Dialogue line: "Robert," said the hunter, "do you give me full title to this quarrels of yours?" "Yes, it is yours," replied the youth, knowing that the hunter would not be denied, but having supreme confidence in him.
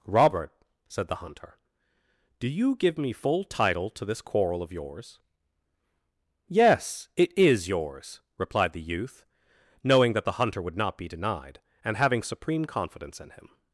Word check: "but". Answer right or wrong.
wrong